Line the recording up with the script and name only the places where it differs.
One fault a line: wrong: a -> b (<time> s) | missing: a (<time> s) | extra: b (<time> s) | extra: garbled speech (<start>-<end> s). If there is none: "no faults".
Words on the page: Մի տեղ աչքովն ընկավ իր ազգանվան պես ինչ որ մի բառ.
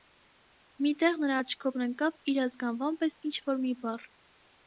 extra: նրա (1.2 s)